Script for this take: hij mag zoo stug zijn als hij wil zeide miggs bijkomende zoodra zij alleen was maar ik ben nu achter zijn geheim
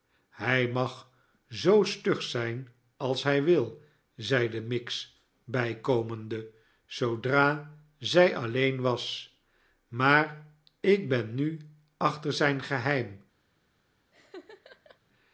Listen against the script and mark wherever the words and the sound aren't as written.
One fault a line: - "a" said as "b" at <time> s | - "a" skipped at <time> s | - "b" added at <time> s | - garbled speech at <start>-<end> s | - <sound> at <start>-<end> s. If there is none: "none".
- laugh at 14.1-15.0 s